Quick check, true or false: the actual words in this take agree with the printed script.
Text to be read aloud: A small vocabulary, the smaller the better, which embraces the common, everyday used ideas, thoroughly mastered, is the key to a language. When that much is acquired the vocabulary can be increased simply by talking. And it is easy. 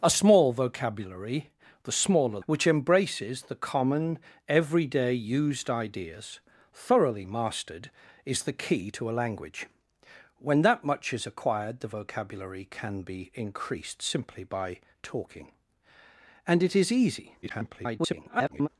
false